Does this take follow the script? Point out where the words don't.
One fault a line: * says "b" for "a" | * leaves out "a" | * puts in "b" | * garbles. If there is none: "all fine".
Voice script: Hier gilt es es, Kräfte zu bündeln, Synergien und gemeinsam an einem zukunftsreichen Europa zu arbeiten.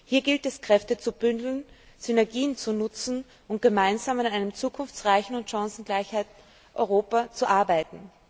* leaves out "es"
* puts in "zu nutzen"
* puts in "und chancengleichen"